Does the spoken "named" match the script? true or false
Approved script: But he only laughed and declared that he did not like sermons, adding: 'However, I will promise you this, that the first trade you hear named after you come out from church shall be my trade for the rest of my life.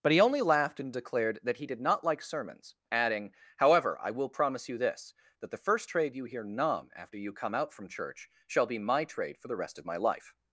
false